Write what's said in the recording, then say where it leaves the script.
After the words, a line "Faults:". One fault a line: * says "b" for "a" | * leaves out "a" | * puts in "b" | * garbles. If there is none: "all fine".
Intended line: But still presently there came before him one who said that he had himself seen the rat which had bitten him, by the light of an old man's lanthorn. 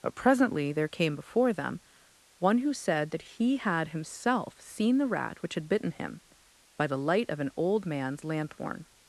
But presently there came before them one who said that he had himself seen the rat which had bitten him, by the light of an old man's lanthorn.
Faults:
* leaves out "still"
* says "them" for "him"